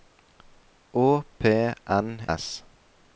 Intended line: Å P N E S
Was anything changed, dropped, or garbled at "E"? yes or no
yes